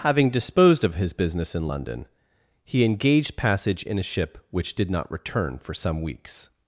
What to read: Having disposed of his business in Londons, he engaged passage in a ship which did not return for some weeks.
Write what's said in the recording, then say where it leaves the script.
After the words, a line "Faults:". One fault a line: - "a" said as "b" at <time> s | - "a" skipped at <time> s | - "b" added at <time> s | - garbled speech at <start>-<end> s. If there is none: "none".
Having disposed of his business in London, he engaged passage in a ship which did not return for some weeks.
Faults:
- "Londons" said as "London" at 1.7 s